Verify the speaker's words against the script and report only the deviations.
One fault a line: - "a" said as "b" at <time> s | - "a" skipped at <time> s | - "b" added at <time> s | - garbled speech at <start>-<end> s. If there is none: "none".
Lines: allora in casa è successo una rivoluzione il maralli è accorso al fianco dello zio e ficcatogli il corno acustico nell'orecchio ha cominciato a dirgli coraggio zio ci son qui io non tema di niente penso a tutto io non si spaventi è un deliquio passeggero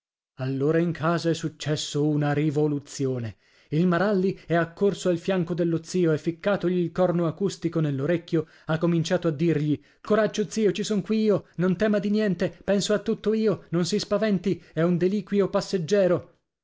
none